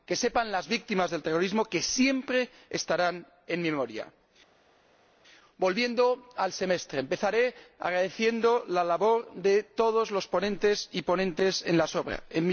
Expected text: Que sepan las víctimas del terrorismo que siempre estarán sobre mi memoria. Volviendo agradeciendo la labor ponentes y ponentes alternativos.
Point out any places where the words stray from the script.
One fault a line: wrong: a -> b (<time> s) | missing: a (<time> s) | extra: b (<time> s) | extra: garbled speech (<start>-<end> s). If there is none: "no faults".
wrong: sobre -> en (3.5 s)
extra: al Semestre Empezaré (6.4 s)
extra: de todos los (9.3 s)